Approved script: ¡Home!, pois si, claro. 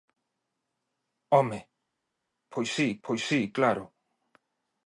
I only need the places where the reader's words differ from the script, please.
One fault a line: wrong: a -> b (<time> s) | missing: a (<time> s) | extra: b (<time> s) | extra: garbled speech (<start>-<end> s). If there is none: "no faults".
extra: pois si (3.0 s)